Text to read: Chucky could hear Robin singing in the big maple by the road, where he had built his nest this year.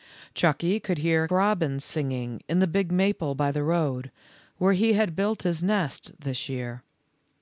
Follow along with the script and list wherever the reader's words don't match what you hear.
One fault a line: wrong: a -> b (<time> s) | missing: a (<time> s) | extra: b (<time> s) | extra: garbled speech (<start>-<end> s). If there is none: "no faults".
no faults